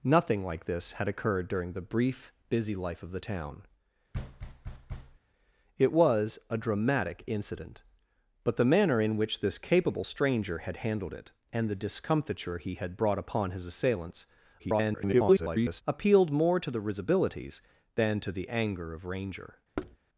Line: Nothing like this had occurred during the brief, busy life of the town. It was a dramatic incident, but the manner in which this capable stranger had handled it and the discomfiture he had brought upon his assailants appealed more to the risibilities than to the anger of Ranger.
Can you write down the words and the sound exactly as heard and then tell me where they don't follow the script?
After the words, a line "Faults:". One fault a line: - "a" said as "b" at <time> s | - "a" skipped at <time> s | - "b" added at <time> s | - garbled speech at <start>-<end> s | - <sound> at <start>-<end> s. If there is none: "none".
Nothing like this had occurred during the brief, busy life of the town. It was a dramatic incident, but the manner in which this capable stranger had handled it and the discomfiture he had brought upon his assailants [garbled] appealed more to the risibilities than to the anger of Ranger.
Faults:
- thud at 4.1-5.2 s
- garbled speech at 14.6-15.8 s
- thud at 19.8-20.0 s